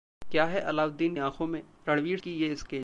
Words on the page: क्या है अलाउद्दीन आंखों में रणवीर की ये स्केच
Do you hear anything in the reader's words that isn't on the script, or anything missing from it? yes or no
no